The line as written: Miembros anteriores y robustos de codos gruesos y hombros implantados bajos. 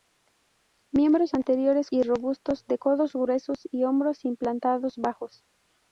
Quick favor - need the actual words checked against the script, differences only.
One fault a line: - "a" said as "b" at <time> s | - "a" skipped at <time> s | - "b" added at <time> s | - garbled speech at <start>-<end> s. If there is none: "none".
none